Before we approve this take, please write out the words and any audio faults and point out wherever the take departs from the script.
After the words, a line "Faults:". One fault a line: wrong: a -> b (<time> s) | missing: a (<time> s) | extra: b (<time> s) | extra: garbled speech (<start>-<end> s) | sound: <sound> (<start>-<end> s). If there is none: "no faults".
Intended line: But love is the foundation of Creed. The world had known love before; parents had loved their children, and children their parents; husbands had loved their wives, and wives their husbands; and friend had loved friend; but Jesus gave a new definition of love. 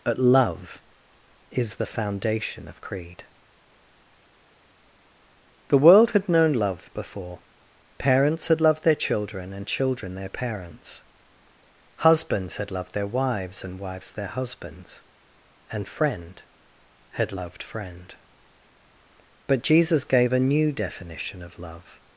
But love is the foundation of Creed. The world had known love before; parents had loved their children, and children their parents; husbands had loved their wives, and wives their husbands; and friend had loved friend; but Jesus gave a new definition of love.
Faults:
no faults